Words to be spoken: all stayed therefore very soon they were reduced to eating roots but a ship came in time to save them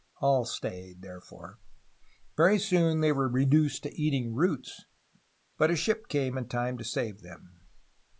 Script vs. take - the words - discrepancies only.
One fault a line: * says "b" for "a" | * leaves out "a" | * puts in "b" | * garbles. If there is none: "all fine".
all fine